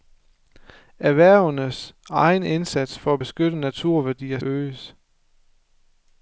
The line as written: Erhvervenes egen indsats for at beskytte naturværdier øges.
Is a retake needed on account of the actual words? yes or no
no